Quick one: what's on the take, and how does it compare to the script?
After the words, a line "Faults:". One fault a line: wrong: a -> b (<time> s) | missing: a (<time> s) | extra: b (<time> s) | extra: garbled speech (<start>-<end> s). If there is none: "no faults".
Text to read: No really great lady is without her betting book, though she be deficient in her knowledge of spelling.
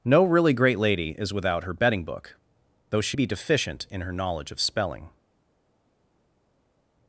No really great lady is without her betting book, though she be deficient in her knowledge of spelling.
Faults:
no faults